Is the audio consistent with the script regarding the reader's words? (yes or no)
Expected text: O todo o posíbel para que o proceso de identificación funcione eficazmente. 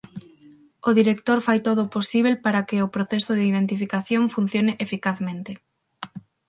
no